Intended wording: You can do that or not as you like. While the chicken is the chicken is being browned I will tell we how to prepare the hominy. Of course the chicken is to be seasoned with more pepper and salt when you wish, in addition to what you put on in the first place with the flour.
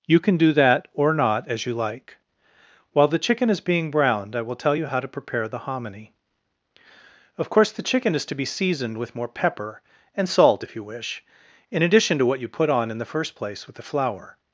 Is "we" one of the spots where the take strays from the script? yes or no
yes